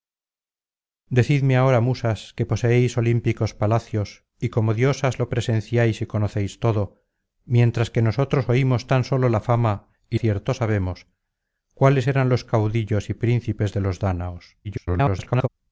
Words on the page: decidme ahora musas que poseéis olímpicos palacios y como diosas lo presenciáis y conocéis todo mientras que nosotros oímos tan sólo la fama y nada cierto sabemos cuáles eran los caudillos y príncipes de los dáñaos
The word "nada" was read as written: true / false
false